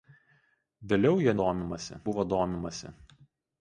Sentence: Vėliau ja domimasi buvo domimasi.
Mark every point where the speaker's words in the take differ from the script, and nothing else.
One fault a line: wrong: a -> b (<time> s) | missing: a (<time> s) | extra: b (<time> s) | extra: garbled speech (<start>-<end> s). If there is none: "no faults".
no faults